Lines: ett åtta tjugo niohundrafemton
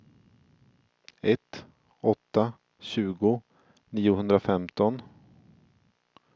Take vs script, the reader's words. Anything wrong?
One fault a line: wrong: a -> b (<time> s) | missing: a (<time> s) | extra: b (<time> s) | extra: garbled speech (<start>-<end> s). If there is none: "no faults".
no faults